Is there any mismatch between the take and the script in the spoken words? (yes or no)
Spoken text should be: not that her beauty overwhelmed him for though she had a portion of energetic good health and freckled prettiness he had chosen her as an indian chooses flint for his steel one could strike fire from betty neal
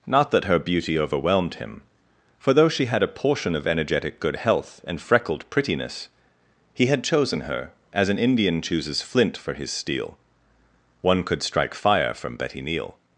no